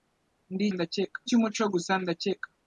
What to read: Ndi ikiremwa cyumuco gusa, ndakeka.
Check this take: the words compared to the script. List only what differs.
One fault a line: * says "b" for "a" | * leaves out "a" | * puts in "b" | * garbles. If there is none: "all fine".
* says "ndakeka" for "ikiremwa"